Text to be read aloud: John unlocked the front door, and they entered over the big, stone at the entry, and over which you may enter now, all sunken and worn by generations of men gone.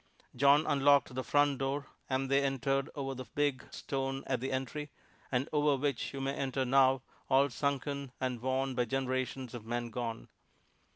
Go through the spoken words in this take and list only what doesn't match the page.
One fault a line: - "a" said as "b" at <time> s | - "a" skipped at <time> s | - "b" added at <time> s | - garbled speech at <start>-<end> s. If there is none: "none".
none